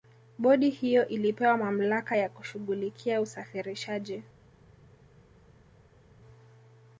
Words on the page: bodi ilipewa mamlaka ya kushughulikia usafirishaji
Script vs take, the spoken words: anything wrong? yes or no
yes